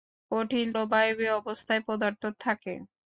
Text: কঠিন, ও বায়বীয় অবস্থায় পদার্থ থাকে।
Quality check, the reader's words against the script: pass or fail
pass